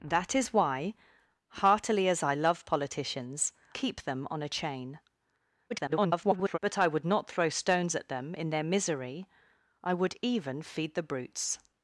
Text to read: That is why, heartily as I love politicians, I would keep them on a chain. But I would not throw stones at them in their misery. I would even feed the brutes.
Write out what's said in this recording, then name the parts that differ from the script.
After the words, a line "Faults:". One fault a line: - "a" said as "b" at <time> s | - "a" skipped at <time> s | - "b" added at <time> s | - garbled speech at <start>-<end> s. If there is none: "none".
That is why, heartily as I love politicians, keep them on a chain. [garbled] But I would not throw stones at them in their misery. I would even feed the brutes.
Faults:
- "I would" skipped at 3.5 s
- garbled speech at 5.7-6.6 s